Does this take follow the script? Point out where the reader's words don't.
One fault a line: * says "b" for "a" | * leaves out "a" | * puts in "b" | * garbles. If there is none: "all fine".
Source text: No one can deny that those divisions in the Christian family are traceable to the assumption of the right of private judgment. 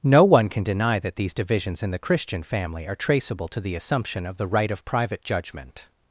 * says "these" for "those"